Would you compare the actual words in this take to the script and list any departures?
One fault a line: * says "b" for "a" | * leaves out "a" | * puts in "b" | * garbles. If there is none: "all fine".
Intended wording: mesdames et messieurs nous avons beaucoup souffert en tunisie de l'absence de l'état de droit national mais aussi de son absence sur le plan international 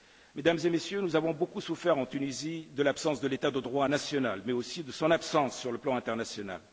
all fine